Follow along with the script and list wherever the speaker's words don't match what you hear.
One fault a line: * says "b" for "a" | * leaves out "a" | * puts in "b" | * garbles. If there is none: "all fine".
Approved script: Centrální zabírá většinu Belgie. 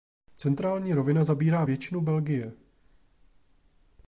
* puts in "rovina"